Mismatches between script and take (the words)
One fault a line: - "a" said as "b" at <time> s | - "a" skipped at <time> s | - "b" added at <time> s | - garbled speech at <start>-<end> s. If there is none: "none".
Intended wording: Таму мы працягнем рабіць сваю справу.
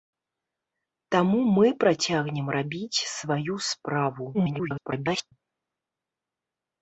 - garbled speech at 4.3-5.3 s